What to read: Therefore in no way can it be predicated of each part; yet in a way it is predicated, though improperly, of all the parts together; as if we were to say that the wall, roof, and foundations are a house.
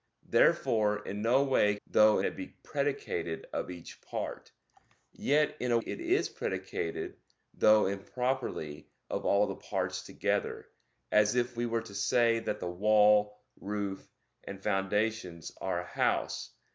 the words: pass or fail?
fail